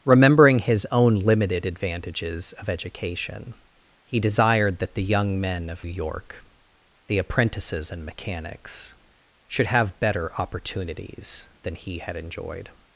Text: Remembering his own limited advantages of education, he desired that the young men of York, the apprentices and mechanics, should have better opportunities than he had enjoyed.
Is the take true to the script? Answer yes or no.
yes